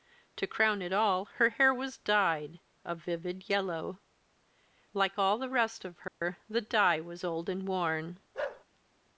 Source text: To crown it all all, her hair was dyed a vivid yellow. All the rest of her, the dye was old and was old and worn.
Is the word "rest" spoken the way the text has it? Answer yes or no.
yes